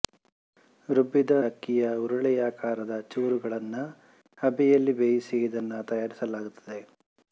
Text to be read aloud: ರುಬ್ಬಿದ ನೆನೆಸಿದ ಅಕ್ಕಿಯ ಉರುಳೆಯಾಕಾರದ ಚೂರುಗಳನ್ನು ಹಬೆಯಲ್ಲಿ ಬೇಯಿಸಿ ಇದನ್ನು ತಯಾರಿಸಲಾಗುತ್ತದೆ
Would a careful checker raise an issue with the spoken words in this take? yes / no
yes